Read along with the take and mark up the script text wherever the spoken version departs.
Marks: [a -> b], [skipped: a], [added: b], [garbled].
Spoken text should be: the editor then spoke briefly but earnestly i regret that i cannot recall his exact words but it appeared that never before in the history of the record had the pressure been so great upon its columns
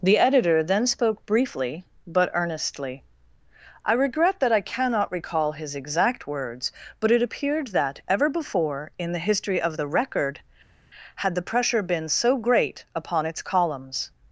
the editor then spoke briefly but earnestly i regret that i cannot recall his exact words but it appeared that [never -> ever] before in the history of the record had the pressure been so great upon its columns